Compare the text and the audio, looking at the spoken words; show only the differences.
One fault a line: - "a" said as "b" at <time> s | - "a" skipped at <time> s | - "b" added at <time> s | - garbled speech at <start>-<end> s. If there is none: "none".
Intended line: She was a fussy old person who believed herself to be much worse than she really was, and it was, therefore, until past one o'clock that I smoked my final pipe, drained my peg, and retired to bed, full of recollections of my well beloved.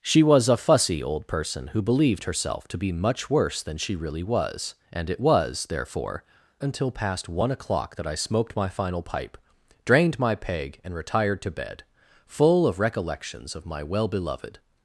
none